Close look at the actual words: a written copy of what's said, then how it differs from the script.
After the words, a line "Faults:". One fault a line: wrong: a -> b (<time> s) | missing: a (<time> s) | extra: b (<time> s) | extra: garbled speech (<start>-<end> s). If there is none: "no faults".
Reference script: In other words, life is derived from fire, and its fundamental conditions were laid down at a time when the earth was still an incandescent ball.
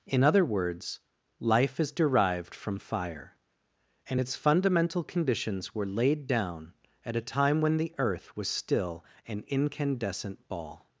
In other words, life is derived from fire, and its fundamental conditions were laid down at a time when the earth was still an incandescent ball.
Faults:
no faults